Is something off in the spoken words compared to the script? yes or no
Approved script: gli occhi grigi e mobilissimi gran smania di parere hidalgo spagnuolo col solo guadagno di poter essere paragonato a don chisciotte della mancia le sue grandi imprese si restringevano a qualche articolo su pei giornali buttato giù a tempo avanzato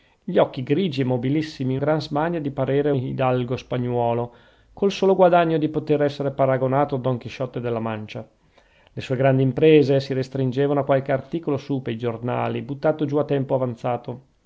no